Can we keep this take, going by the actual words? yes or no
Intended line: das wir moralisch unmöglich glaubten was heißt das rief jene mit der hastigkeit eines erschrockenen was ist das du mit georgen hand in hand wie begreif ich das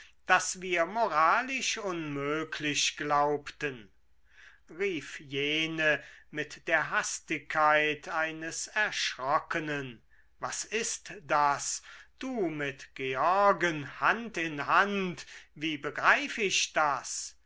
no